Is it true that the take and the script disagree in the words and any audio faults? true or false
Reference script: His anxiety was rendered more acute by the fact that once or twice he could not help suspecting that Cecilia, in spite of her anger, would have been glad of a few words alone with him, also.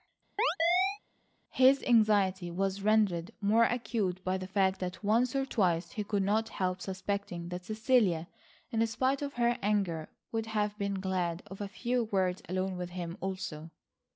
true